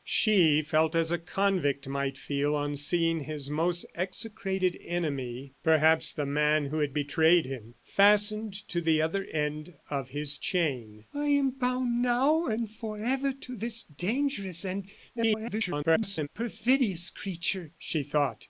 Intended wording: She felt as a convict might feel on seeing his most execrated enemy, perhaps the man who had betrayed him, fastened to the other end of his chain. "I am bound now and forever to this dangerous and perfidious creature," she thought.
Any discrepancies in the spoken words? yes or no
yes